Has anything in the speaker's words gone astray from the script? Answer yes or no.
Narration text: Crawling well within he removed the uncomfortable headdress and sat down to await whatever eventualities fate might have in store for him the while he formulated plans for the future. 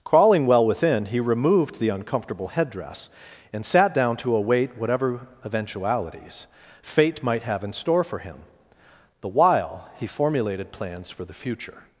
no